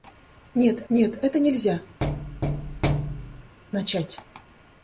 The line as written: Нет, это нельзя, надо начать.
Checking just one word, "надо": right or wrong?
wrong